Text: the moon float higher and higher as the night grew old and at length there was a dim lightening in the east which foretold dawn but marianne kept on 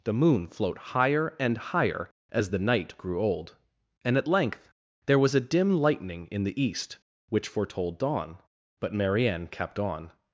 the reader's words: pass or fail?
pass